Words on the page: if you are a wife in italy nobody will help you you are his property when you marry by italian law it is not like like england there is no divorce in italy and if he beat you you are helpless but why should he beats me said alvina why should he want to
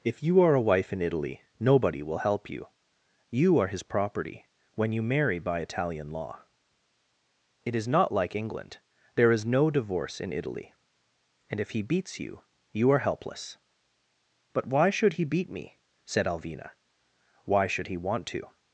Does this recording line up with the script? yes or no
no